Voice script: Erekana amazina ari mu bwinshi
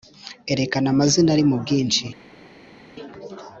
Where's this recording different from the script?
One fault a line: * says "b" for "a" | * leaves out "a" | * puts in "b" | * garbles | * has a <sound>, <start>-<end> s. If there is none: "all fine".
all fine